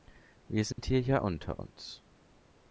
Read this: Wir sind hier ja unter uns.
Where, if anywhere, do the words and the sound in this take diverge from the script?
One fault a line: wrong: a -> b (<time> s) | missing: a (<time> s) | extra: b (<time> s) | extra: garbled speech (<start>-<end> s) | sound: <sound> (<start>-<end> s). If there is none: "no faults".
sound: dropout (0.7-0.8 s)